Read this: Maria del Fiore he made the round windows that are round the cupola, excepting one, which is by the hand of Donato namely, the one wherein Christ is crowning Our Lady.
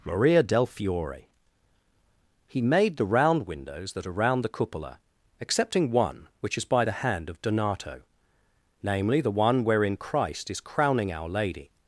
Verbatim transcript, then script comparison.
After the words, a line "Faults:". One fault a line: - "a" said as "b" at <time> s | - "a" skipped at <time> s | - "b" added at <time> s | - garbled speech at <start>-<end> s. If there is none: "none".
Maria del Fiore he made the round windows that are round the cupola, excepting one, which is by the hand of Donato namely, the one wherein Christ is crowning Our Lady.
Faults:
none